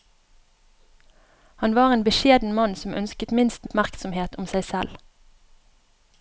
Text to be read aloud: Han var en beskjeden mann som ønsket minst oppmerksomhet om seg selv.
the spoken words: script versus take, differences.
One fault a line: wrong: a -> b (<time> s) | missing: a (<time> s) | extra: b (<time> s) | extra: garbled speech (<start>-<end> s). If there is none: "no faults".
no faults